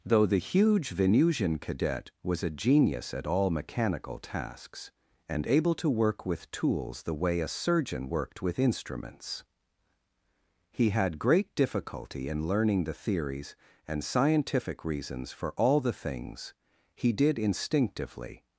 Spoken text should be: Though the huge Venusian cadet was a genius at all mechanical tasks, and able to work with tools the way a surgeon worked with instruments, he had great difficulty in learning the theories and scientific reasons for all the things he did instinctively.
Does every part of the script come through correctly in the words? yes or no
yes